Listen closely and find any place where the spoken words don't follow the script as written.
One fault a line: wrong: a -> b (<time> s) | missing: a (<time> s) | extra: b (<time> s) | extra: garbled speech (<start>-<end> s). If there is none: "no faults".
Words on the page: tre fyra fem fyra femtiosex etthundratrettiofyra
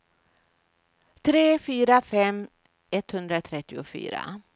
missing: fyra femtiosex (2.5 s)